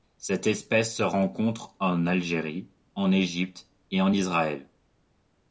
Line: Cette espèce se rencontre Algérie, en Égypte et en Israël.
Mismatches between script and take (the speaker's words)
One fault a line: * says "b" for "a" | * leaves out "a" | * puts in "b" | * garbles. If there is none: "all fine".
* puts in "en"